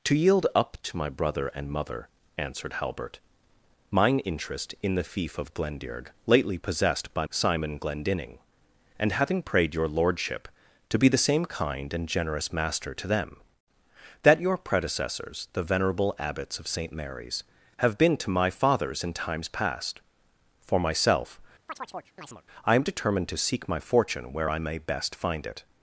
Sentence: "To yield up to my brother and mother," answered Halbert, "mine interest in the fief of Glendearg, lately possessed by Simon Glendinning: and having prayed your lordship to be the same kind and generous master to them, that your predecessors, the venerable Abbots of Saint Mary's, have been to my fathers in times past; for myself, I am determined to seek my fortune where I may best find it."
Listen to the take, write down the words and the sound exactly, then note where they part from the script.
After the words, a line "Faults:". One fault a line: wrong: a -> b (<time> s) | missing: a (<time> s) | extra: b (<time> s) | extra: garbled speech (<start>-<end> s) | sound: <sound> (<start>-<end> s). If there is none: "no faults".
"To yield up to my brother and mother," answered Halbert, "mine interest in the fief of Glendearg, lately possessed by Simon Glendinning: and having prayed your lordship to be the same kind and generous master to them, that your predecessors, the venerable Abbots of Saint Mary's, have been to my fathers in times past; for myself, I am determined to seek my fortune where I may best find it."
Faults:
sound: chirp (21.7-22.4 s)